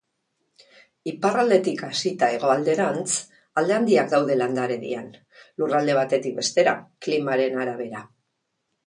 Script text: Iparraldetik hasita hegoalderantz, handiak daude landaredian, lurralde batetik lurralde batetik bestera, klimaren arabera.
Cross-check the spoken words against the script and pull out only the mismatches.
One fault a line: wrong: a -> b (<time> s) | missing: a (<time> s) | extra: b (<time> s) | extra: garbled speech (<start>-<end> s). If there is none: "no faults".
extra: alde (3.6 s)
missing: lurralde batetik (6.4 s)